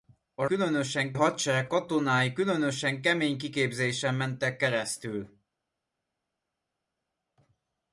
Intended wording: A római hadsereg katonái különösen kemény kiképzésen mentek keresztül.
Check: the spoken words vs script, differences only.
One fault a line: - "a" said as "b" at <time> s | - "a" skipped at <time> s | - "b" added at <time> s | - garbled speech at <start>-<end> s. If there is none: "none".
- "római" said as "különösen" at 0.4 s